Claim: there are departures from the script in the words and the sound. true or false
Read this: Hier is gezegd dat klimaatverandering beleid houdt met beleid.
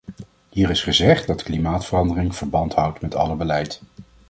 true